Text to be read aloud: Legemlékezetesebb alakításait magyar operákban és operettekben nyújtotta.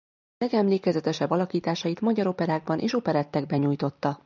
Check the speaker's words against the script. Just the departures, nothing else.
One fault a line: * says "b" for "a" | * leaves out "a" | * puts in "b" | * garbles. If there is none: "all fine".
all fine